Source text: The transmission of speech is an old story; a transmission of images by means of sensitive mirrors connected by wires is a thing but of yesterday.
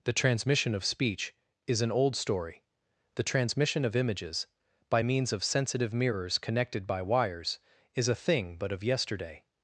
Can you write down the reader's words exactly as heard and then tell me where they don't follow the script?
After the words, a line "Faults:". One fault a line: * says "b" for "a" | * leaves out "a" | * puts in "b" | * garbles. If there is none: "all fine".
The transmission of speech is an old story; the transmission of images by means of sensitive mirrors connected by wires is a thing but of yesterday.
Faults:
* says "the" for "a"